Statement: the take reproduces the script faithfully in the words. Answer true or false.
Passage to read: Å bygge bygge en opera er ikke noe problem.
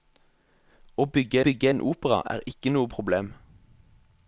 true